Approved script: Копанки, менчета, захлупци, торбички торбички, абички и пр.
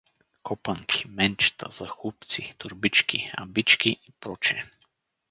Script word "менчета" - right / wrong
right